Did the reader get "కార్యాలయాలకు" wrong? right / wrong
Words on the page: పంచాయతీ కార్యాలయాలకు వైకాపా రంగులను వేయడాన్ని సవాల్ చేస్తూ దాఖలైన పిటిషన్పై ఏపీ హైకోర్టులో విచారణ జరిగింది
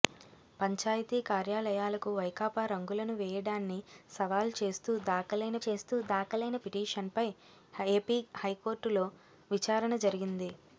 right